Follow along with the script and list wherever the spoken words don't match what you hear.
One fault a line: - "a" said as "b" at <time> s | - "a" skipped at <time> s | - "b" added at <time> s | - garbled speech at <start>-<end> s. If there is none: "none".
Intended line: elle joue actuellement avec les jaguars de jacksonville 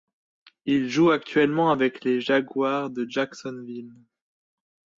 - "elle" said as "il" at 0.7 s